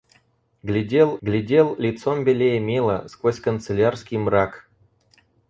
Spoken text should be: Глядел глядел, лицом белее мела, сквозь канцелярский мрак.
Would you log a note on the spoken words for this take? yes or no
no